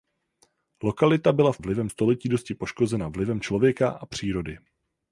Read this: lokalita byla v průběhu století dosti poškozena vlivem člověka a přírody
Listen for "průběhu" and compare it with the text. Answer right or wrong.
wrong